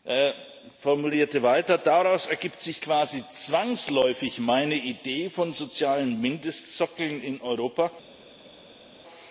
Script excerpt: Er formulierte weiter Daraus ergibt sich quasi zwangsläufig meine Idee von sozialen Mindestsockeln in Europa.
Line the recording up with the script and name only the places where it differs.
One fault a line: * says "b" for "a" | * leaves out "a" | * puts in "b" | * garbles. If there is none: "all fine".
all fine